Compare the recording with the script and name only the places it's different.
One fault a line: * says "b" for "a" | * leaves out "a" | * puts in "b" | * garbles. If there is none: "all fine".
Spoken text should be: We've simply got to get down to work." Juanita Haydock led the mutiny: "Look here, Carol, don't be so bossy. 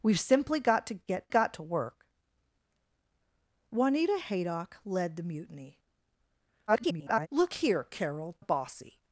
* says "got" for "down"
* garbles
* leaves out "don't be so"